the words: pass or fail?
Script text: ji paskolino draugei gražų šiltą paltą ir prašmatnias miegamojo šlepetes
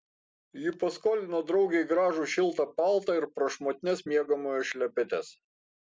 pass